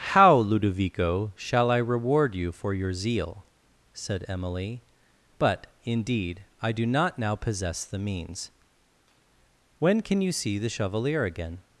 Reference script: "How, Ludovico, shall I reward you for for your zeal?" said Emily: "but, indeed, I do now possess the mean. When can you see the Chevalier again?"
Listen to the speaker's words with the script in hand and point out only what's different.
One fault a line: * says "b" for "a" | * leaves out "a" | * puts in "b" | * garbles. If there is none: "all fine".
* leaves out "for"
* puts in "not"
* says "means" for "mean"